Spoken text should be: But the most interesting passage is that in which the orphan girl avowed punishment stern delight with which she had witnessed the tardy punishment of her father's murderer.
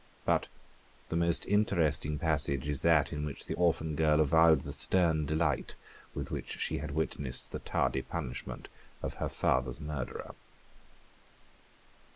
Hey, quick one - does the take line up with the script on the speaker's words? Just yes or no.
no